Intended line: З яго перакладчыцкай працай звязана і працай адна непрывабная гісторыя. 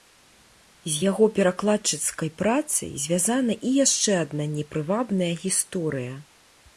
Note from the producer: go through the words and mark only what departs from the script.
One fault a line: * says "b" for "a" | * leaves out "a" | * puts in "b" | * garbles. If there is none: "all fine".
* says "яшчэ" for "працай"